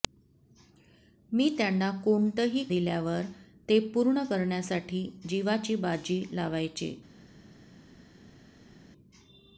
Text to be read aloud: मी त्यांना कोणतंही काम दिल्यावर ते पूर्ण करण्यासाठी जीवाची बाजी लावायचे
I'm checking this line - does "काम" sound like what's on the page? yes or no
no